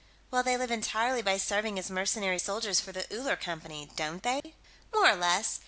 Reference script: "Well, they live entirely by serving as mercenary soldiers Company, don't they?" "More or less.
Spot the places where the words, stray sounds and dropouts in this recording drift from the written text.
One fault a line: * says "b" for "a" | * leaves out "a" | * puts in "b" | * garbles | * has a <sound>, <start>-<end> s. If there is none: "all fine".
* puts in "for the Uller"
* has a dropout, 4.4-4.4 s